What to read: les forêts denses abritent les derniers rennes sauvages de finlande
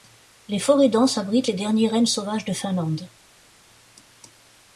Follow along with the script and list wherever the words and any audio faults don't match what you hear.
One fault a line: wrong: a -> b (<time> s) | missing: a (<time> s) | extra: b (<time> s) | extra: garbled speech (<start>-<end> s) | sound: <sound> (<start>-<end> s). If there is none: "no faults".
no faults